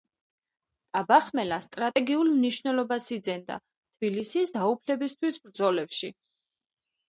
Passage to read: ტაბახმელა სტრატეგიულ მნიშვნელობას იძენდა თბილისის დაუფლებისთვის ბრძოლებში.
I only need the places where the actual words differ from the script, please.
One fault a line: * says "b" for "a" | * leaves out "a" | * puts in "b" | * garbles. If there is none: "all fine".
all fine